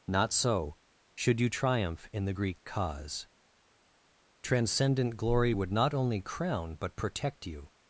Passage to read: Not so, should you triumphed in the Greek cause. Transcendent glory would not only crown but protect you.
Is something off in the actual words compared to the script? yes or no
yes